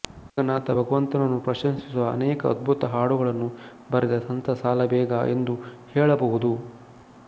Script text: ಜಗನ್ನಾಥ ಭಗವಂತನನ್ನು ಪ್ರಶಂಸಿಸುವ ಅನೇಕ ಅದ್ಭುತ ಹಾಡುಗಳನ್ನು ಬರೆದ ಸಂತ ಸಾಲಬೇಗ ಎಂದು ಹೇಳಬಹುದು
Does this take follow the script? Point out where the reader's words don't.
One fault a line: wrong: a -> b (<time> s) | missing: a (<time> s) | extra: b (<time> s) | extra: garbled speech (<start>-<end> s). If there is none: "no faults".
no faults